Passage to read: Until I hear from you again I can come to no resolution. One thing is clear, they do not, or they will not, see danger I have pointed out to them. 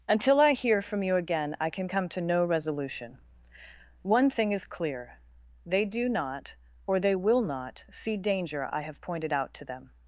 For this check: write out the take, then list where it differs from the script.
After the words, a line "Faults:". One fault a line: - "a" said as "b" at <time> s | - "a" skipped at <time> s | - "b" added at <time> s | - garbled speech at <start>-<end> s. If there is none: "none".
Until I hear from you again I can come to no resolution. One thing is clear, they do not, or they will not, see danger I have pointed out to them.
Faults:
none